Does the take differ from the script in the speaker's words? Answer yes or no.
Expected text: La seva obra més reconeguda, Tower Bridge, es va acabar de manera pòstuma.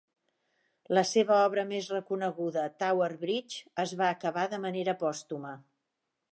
no